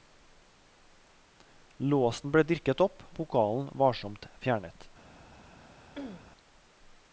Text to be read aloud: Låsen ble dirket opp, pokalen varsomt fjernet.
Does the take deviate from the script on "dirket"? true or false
false